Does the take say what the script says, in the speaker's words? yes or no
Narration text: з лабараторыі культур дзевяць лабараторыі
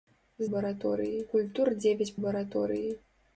yes